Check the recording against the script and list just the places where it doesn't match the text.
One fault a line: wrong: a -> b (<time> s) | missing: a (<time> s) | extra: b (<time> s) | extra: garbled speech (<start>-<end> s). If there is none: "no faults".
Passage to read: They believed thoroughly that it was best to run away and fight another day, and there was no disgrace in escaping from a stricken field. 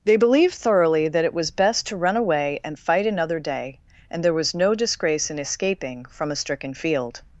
no faults